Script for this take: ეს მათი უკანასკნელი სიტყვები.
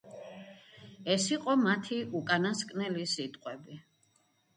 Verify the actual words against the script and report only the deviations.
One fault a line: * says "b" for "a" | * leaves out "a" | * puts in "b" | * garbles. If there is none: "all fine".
* puts in "იყო"